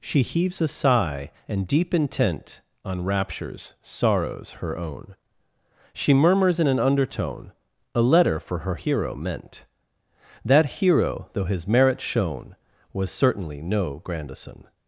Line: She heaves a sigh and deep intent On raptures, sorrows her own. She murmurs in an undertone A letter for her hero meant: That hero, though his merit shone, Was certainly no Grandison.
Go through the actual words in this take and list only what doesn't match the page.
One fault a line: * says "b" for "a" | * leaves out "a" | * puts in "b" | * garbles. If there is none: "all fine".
all fine